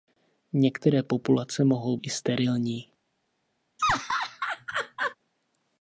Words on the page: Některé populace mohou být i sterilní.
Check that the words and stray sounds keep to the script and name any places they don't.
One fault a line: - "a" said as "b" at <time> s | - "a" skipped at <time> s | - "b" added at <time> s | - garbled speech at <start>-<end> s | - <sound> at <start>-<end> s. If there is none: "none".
- "být" skipped at 2.0 s
- laugh at 3.8-5.2 s